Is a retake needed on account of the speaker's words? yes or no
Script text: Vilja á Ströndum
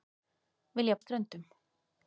no